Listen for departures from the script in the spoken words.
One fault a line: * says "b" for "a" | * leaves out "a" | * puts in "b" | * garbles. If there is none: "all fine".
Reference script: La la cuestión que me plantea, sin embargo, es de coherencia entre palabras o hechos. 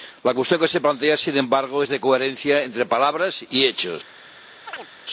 * leaves out "la"
* says "se" for "me"
* says "y" for "o"